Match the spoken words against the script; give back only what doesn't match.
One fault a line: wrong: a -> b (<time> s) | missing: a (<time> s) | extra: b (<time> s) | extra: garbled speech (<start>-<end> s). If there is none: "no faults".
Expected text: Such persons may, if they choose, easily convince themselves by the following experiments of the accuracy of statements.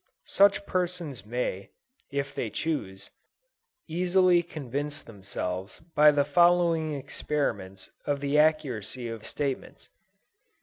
no faults